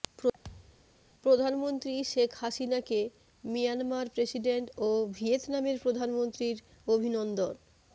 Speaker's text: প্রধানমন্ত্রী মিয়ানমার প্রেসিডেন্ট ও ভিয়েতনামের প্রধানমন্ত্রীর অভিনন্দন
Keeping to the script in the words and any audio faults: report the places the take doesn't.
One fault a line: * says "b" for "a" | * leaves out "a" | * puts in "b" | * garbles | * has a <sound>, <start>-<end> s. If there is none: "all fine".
* has a thud, 0.4-0.9 s
* puts in "শেখ হাসিনাকে"